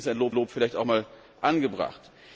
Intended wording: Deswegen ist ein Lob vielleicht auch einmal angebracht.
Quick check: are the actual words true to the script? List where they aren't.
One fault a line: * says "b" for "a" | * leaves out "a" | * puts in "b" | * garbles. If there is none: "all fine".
* puts in "Lob"